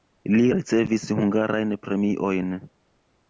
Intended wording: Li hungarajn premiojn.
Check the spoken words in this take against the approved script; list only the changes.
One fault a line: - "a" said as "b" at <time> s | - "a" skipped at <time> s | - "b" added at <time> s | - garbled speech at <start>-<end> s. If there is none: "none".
- "ricevis" added at 0.5 s